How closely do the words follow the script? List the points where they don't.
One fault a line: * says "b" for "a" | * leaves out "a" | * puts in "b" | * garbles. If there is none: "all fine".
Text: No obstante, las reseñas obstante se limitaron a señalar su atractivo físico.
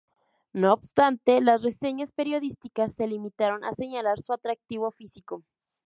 * says "periodísticas" for "obstante"